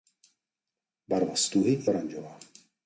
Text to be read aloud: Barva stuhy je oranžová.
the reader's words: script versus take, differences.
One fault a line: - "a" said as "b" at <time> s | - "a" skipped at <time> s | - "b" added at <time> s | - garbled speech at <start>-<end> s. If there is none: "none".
- "je" skipped at 1.9 s